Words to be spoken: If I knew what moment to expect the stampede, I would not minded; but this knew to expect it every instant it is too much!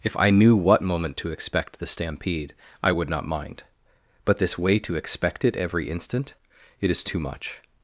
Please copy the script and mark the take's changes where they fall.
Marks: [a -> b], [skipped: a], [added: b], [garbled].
If I knew what moment to expect the stampede, I would not [minded; -> mind] but this [knew -> way] to expect it every instant it is too much!